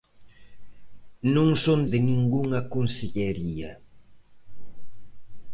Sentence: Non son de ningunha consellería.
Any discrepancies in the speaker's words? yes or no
no